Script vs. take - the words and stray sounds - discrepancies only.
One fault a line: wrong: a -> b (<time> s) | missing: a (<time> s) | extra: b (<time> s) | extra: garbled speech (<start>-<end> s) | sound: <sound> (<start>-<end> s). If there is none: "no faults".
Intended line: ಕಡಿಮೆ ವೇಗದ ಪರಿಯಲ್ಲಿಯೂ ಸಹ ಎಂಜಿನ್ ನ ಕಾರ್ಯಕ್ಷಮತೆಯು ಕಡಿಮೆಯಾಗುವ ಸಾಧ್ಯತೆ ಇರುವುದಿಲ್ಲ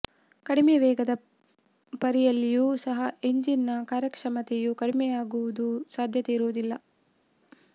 no faults